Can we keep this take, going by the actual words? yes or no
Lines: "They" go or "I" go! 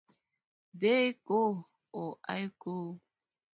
yes